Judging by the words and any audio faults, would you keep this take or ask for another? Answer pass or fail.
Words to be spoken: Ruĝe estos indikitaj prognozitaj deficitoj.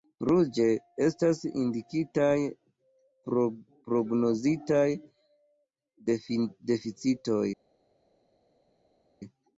fail